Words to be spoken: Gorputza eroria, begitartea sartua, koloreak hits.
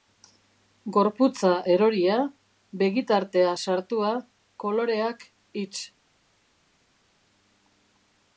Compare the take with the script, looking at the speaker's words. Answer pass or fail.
pass